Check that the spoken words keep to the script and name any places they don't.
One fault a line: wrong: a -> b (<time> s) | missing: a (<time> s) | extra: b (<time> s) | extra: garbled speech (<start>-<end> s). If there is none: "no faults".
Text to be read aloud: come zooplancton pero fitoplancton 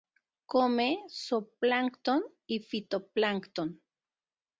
wrong: pero -> y (2.5 s)